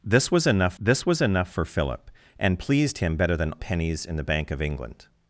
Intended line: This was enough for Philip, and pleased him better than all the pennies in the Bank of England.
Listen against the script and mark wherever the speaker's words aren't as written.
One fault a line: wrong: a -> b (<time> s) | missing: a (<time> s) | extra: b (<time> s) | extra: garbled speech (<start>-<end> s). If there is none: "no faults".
extra: this was enough (0.8 s)
missing: all the (3.5 s)